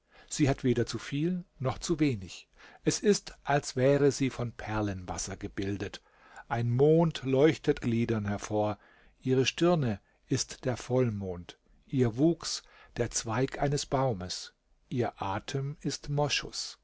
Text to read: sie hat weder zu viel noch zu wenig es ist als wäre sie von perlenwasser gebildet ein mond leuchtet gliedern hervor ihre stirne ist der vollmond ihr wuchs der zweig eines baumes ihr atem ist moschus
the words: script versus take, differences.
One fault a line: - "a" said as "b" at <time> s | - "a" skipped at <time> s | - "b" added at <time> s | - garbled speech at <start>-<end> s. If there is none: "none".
none